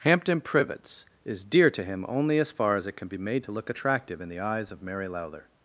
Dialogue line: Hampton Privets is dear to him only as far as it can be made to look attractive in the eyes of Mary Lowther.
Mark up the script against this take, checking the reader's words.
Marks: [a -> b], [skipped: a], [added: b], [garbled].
Hampton Privets is dear to him only as far as it can be made to look attractive in the eyes of Mary Lowther.